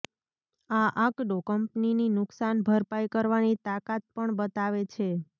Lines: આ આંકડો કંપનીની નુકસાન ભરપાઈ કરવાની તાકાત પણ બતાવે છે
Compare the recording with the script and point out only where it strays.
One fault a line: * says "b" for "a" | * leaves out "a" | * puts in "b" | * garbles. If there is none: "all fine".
all fine